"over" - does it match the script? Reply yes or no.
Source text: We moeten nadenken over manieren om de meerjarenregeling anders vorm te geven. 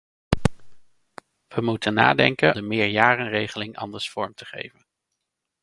no